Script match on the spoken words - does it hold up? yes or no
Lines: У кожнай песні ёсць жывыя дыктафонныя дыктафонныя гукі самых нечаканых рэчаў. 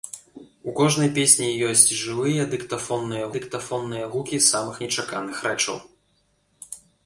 yes